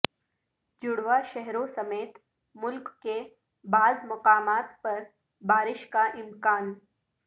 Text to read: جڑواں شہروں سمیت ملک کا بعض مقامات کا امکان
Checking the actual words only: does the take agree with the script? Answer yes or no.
no